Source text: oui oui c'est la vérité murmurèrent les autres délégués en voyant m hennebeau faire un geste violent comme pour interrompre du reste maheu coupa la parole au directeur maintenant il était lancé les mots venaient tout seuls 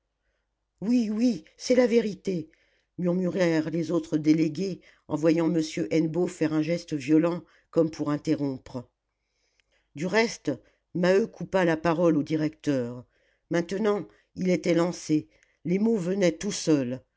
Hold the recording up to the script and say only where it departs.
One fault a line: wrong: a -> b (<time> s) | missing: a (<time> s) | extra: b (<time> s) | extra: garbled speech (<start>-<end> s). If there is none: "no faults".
no faults